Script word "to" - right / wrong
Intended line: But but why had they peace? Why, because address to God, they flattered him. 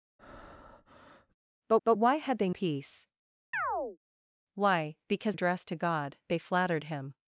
right